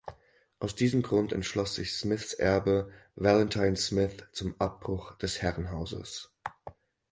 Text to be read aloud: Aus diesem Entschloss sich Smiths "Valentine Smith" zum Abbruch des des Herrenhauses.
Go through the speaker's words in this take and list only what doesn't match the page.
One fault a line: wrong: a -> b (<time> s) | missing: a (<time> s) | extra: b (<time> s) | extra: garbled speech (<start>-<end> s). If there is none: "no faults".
extra: Grund (1.0 s)
extra: Erbe (2.3 s)
missing: des (5.4 s)